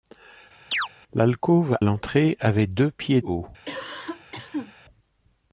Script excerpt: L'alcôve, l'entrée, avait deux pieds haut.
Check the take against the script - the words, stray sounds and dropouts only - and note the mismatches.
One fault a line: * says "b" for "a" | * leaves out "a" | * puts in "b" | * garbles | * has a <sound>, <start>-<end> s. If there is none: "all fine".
* has a chirp, 0.7-0.9 s
* has a cough, 3.6-4.7 s